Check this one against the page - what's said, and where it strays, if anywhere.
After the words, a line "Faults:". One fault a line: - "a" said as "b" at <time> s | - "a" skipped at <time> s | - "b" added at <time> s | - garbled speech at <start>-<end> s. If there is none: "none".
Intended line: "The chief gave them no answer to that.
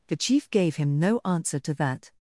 "The chief gave him no answer to that.
Faults:
- "them" said as "him" at 0.8 s